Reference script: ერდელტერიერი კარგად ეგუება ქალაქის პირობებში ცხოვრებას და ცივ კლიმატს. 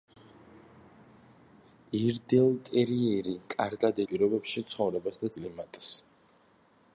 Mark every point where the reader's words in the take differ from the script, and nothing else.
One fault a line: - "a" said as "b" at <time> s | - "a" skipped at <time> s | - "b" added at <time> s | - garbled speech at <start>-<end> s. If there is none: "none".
- "ეგუება ქალაქის" skipped at 4.0 s
- "ცივ" skipped at 5.3 s